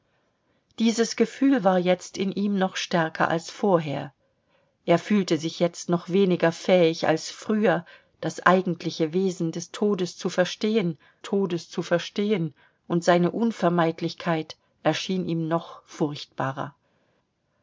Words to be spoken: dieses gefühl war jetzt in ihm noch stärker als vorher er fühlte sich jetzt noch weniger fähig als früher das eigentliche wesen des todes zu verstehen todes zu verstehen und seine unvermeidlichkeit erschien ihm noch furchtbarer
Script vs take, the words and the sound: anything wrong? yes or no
no